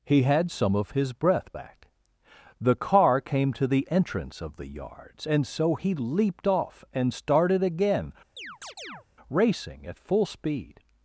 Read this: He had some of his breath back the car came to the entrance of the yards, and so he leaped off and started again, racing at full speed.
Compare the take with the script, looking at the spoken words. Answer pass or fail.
pass